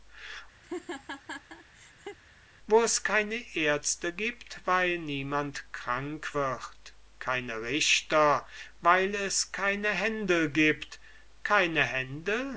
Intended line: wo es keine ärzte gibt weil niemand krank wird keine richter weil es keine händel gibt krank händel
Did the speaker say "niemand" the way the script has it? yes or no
yes